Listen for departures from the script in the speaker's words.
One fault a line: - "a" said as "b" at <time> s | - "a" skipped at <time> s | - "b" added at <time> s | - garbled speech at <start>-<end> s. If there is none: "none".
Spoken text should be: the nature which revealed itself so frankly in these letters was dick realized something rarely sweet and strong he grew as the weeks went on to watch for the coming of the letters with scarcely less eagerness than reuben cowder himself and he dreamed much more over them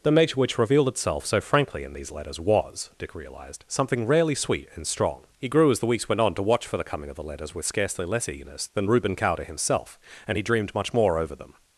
none